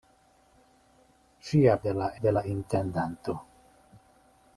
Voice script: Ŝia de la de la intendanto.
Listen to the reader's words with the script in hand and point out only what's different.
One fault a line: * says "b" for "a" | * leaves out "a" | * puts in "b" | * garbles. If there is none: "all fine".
all fine